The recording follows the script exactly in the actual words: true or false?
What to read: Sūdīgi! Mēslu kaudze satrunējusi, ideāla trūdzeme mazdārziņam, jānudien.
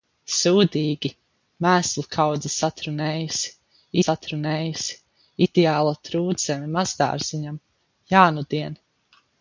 false